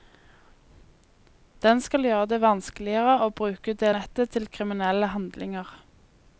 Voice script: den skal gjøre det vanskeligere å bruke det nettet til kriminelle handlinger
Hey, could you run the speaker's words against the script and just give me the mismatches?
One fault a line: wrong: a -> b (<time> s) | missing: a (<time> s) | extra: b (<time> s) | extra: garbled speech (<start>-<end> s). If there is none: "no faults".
no faults